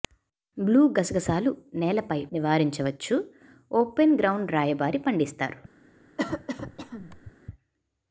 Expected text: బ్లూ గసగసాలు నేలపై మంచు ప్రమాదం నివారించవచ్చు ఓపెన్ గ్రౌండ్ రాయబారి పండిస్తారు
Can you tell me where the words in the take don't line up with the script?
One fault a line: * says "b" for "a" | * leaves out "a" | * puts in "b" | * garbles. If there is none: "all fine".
* leaves out "మంచు ప్రమాదం"